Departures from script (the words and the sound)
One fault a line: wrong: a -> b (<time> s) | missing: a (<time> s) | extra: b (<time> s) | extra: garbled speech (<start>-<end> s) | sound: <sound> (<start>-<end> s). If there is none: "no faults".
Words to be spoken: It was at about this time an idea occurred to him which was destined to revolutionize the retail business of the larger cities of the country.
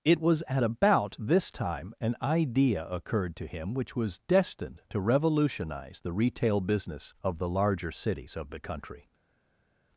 no faults